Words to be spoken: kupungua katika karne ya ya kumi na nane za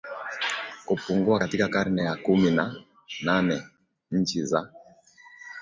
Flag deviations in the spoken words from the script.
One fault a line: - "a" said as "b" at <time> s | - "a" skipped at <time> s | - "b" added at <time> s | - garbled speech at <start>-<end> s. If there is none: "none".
- "ya" skipped at 2.1 s
- "nchi" added at 4.1 s